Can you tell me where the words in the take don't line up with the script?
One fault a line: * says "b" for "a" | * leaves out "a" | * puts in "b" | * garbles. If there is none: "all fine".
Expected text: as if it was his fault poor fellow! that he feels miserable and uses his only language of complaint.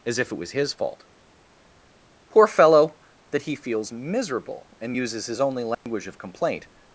all fine